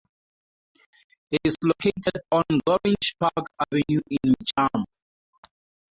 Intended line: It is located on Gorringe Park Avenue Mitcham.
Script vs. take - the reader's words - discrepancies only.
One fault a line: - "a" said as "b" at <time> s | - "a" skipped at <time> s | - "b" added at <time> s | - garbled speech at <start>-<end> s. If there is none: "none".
- "in" added at 4.1 s